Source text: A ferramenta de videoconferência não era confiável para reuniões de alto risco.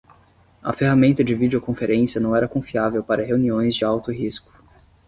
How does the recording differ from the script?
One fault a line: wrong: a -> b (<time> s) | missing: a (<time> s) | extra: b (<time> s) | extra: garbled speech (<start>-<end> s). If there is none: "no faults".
no faults